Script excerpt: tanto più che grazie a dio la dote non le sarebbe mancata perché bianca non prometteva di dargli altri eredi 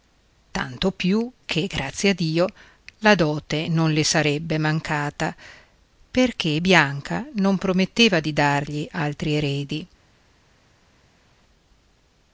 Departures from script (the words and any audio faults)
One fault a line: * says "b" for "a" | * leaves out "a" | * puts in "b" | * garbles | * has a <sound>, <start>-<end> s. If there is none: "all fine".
all fine